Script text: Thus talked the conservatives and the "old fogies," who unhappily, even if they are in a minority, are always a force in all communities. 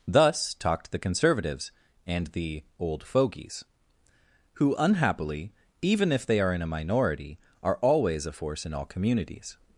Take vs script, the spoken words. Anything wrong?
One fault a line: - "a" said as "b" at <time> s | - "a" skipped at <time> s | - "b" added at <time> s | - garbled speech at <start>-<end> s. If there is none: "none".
none